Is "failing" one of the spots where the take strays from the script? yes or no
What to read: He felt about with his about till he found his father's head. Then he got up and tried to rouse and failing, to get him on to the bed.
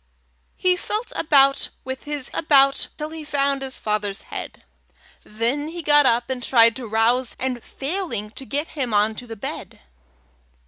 no